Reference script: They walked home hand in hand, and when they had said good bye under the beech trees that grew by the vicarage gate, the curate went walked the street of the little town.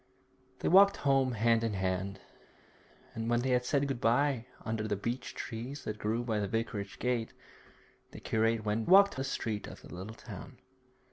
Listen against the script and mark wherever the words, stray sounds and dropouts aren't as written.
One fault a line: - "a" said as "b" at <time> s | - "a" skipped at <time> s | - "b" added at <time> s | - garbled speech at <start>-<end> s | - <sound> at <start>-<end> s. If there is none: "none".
none